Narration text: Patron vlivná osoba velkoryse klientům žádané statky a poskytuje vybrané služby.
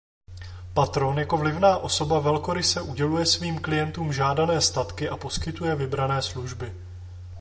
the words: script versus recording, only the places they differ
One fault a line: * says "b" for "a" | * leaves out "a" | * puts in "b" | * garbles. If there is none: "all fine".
* puts in "jako"
* puts in "uděluje svým"